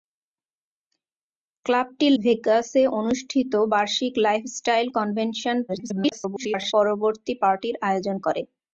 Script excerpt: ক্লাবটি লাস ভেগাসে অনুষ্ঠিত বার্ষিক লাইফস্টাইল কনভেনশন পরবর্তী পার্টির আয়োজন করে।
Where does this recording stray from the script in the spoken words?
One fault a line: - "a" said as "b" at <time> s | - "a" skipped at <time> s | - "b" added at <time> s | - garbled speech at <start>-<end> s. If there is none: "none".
- "লাস" skipped at 2.1 s
- garbled speech at 5.7-6.7 s